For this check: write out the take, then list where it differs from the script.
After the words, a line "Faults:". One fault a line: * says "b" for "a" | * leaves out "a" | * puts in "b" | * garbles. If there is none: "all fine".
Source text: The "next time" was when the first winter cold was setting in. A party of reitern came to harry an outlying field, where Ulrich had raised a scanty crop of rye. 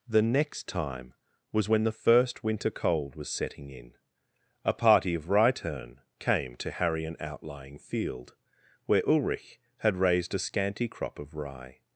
The "next time" was when the first winter cold was setting in. A party of reitern came to harry an outlying field, where Ulrich had raised a scanty crop of rye.
Faults:
all fine